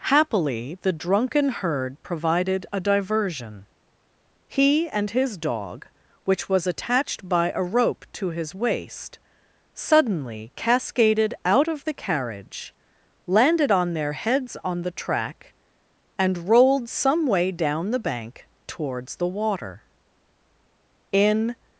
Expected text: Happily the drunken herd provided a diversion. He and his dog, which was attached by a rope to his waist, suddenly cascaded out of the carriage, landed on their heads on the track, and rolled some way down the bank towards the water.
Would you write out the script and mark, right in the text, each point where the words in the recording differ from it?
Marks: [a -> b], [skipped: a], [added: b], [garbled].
Happily the drunken herd provided a diversion. He and his dog, which was attached by a rope to his waist, suddenly cascaded out of the carriage, landed on their heads on the track, and rolled some way down the bank towards the water. [added: In]